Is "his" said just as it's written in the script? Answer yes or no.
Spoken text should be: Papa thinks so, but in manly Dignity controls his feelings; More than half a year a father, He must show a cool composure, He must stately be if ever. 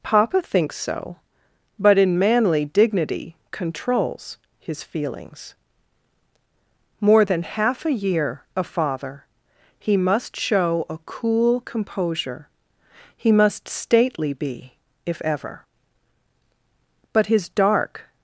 yes